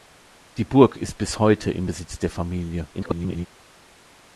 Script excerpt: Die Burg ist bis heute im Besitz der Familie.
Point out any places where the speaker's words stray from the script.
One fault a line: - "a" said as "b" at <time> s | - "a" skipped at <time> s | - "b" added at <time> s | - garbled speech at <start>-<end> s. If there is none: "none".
- garbled speech at 2.9-3.5 s